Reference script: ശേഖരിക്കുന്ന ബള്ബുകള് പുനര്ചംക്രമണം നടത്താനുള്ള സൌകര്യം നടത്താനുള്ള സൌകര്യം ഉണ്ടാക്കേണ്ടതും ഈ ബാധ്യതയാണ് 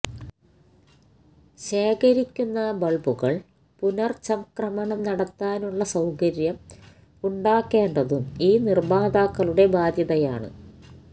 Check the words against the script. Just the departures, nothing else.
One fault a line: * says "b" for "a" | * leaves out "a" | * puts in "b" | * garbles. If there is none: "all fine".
* leaves out "നടത്താനുള്ള സൌകര്യം"
* puts in "നിര്മാതാക്കളുടെ"